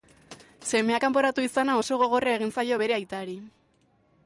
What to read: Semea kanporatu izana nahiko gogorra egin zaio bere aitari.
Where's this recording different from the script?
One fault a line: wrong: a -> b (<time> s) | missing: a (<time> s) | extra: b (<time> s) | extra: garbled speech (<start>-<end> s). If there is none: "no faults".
wrong: nahiko -> oso (1.8 s)